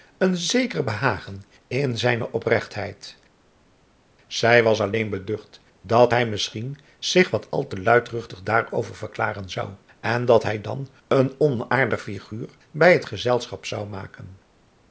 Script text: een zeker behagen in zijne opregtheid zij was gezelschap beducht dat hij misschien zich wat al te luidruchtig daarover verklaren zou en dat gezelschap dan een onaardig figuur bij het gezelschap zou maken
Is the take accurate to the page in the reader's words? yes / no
no